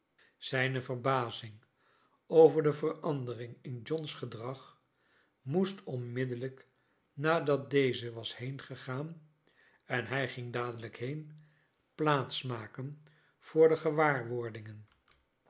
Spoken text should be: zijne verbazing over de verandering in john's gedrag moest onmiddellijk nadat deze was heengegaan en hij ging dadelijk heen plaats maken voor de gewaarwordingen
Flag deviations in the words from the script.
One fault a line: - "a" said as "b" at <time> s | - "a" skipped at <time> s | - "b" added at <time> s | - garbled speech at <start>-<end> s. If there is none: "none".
none